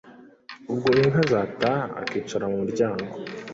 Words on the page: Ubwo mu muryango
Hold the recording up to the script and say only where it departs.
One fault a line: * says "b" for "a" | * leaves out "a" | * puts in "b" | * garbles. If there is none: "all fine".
* puts in "inka zataha akicara"